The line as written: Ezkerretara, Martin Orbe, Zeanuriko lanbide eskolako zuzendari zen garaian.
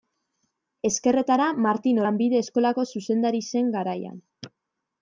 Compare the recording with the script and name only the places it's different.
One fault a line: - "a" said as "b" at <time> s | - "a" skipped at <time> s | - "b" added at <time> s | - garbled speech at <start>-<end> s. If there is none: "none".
- "Orbe Zeanuriko" skipped at 2.0 s